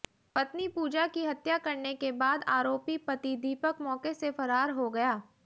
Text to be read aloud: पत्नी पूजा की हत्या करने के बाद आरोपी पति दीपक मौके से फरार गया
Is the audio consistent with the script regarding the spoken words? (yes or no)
no